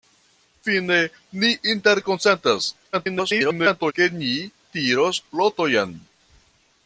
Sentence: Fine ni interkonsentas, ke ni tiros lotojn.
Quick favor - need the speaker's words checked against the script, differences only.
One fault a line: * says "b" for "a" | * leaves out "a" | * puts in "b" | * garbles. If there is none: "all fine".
* garbles